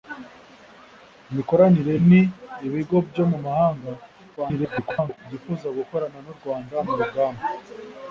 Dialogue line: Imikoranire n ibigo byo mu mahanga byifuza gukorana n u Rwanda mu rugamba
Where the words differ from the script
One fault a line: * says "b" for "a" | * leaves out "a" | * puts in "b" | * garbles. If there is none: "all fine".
* garbles